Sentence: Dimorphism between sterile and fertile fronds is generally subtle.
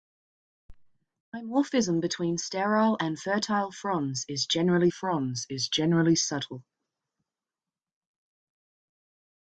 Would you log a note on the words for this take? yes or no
yes